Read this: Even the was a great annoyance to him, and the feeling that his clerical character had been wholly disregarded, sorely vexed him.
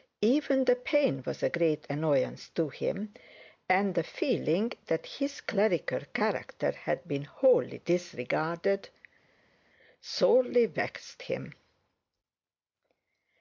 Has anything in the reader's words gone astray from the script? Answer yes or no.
yes